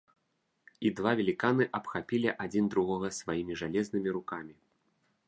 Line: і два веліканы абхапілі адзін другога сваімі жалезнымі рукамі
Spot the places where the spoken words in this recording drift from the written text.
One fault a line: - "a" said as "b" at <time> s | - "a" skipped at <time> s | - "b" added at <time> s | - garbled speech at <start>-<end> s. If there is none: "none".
none